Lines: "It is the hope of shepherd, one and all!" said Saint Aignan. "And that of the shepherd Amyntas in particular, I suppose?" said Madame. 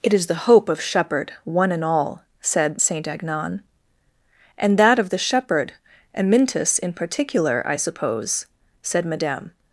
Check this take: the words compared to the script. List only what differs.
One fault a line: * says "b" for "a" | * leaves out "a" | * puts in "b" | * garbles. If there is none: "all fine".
all fine